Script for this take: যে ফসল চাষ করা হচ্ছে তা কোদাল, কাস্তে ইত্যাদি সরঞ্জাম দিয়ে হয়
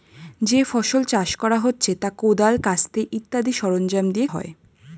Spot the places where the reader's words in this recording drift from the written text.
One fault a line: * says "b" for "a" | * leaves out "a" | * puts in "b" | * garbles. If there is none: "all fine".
all fine